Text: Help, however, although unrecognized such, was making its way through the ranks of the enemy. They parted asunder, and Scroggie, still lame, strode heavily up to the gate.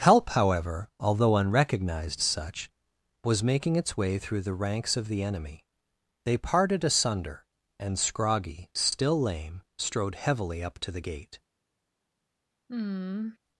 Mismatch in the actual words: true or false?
false